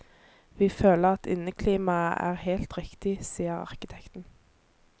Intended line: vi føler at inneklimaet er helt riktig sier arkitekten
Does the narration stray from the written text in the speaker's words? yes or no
no